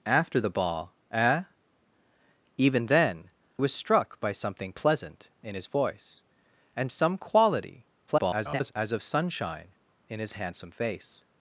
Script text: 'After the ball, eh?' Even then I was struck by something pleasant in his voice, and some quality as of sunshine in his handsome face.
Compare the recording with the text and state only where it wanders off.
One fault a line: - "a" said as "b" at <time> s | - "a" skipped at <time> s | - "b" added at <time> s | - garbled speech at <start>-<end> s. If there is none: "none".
- "I" skipped at 3.3 s
- garbled speech at 8.1-8.7 s